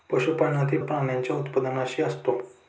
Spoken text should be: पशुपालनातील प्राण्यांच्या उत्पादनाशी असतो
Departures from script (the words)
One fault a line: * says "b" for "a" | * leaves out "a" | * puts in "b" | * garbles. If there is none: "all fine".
all fine